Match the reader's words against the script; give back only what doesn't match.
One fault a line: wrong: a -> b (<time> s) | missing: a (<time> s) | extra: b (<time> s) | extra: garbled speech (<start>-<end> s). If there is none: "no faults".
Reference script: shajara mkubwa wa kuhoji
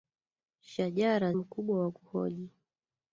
no faults